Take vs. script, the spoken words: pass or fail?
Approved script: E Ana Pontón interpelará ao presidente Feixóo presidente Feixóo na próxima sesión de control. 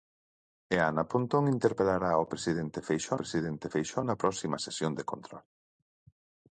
pass